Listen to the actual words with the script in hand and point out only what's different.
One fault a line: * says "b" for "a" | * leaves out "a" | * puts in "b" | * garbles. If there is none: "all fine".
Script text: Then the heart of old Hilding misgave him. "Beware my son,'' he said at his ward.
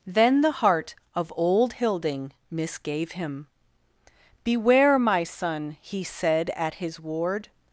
all fine